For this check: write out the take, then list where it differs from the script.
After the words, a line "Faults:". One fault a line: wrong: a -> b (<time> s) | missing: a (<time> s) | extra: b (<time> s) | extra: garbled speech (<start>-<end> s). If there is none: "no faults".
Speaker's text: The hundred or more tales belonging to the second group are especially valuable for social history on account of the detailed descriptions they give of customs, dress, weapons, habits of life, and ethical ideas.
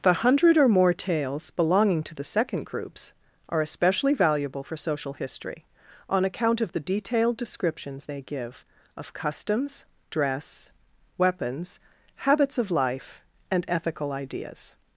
The hundred or more tales belonging to the second groups are especially valuable for social history on account of the detailed descriptions they give of customs, dress, weapons, habits of life, and ethical ideas.
Faults:
wrong: group -> groups (2.6 s)